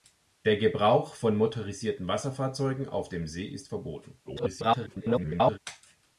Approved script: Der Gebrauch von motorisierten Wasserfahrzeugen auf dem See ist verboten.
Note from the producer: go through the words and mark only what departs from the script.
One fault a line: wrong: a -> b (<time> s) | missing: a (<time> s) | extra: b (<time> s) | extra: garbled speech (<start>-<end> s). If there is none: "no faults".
extra: garbled speech (4.2-5.6 s)